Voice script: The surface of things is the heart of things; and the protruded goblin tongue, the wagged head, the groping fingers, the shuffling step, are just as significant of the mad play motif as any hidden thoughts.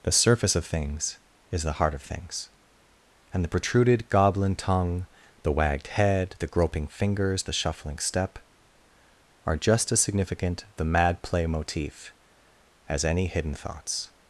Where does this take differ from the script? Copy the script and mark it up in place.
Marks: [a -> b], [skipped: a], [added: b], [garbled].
The surface of things is the heart of things; and the protruded goblin tongue, the wagged head, the groping fingers, the shuffling step, are just as significant [skipped: of] the mad play motif as any hidden thoughts.